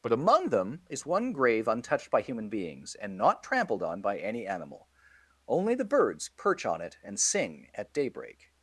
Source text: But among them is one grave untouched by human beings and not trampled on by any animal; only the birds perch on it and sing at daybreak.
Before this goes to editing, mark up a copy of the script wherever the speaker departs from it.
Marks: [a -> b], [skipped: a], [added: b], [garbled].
But among them is one grave untouched by human beings and not trampled on by any animal; only the birds perch on it and sing at daybreak.